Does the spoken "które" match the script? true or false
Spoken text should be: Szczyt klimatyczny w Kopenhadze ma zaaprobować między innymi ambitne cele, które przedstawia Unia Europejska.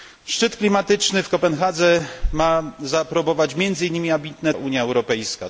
false